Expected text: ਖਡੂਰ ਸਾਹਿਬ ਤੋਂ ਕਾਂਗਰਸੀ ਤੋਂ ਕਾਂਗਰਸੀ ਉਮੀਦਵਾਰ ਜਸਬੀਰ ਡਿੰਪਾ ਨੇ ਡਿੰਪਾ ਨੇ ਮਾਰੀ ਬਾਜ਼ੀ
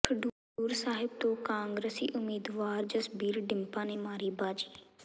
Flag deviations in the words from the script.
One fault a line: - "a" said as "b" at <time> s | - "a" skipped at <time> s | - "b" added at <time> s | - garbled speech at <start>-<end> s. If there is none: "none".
- "ਤੋਂ ਕਾਂਗਰਸੀ" skipped at 2.1 s
- "ਡਿੰਪਾ ਨੇ" skipped at 4.0 s